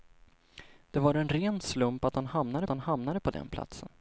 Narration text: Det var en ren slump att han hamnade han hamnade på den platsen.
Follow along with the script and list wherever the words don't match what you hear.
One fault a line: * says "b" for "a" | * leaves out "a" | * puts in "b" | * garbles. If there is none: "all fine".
all fine